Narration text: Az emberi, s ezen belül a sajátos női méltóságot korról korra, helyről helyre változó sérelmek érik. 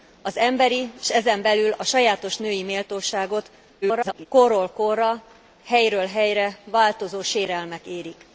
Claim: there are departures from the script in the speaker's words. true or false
true